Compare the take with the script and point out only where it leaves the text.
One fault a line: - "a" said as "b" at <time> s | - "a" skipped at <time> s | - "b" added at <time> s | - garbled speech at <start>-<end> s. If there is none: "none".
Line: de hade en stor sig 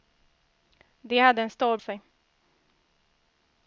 none